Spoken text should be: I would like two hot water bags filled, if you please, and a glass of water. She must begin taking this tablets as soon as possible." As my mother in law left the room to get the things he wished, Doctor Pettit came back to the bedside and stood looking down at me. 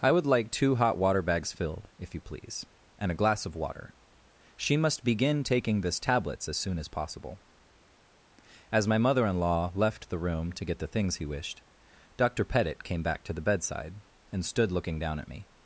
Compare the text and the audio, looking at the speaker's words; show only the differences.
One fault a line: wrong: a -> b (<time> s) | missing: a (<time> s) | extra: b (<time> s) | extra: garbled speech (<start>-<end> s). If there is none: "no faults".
no faults